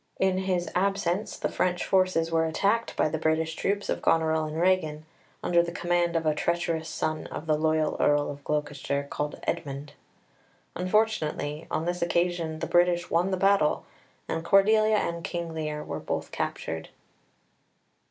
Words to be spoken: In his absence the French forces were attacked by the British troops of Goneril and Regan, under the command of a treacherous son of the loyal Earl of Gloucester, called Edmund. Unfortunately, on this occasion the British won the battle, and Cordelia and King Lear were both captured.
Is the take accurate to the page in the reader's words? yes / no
yes